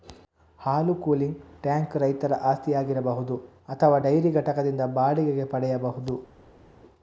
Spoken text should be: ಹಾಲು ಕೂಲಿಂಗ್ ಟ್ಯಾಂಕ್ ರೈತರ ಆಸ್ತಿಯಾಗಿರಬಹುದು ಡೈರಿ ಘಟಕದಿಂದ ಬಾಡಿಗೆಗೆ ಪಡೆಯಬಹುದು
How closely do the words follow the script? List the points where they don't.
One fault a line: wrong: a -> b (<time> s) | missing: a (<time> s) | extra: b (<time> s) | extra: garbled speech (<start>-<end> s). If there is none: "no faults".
extra: ಅಥವಾ (3.7 s)